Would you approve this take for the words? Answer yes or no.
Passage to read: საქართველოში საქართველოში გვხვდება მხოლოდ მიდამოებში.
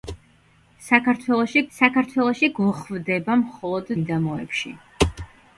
yes